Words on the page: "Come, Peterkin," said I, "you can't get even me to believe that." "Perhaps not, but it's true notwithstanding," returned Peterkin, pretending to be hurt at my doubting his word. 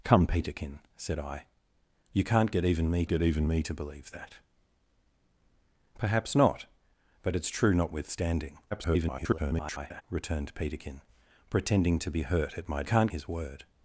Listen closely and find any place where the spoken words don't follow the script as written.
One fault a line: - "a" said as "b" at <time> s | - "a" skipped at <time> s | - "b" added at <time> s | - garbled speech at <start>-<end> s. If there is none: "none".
- "get even me" added at 3.1 s
- garbled speech at 8.7-10.0 s
- "doubting" said as "can't" at 12.8 s